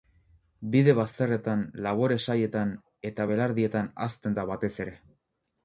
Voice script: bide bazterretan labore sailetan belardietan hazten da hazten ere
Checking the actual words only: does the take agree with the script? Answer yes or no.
no